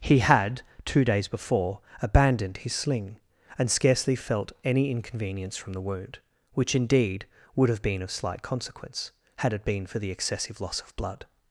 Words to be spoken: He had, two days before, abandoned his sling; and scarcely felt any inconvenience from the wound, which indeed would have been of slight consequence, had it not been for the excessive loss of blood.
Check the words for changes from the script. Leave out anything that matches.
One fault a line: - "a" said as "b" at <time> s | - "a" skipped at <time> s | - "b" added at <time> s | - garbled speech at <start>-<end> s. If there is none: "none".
- "not" skipped at 9.6 s